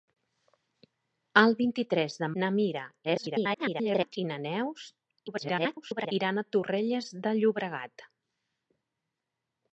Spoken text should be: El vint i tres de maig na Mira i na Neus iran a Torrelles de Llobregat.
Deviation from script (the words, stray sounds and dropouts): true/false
true